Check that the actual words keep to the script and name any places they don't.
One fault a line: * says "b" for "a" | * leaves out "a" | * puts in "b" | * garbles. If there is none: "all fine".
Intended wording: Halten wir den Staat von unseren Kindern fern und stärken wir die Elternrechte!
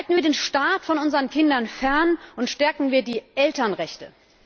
all fine